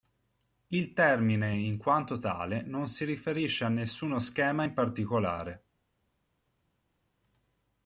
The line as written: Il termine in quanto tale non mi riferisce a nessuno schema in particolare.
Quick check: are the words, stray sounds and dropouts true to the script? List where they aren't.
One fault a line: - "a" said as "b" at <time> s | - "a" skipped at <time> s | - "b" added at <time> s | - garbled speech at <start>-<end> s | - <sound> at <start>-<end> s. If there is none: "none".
- "mi" said as "si" at 2.9 s